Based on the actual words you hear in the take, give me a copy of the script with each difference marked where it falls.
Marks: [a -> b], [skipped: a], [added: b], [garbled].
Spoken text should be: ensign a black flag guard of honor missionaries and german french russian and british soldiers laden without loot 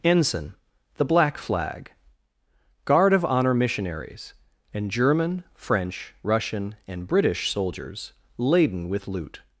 ensign [a -> the] black flag guard of honor missionaries and german french russian and british soldiers laden [without -> with] loot